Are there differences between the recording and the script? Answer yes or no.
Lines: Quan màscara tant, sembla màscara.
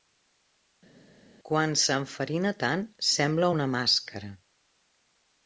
yes